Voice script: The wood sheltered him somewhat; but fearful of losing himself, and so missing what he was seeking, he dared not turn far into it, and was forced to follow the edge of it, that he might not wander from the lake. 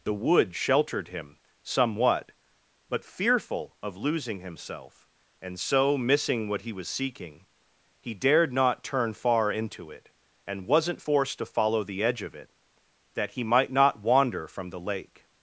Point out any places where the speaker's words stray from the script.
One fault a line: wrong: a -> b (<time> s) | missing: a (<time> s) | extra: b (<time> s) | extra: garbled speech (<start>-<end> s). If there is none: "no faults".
wrong: was -> wasn't (10.7 s)